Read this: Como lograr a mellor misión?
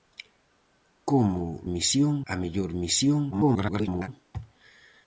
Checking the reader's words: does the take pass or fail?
fail